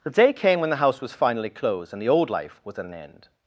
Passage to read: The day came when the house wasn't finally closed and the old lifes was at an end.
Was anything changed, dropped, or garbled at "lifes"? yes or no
yes